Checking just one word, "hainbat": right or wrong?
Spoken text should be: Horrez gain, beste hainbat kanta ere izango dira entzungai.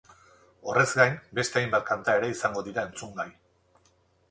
right